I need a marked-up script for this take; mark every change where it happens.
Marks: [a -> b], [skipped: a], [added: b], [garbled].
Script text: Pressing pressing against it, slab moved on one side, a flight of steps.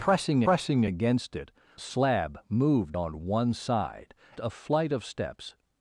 Pressing pressing against it, slab moved on one side, a flight of steps.